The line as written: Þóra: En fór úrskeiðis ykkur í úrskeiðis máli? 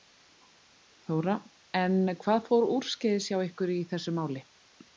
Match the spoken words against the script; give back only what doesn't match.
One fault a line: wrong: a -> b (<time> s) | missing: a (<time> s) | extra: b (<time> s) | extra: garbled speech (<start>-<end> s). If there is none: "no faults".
extra: hvað (2.2 s)
extra: hjá (3.3 s)
wrong: úrskeiðis -> þessu (3.9 s)